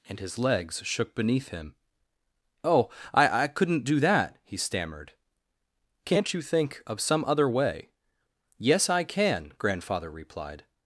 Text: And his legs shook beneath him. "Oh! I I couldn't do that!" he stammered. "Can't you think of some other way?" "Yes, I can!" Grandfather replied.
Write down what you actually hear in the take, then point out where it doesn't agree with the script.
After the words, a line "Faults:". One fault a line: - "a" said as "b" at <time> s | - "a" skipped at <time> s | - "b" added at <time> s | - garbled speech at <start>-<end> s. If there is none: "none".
And his legs shook beneath him. "Oh! I I couldn't do that!" he stammered. "Can't you think of some other way?" "Yes, I can!" Grandfather replied.
Faults:
none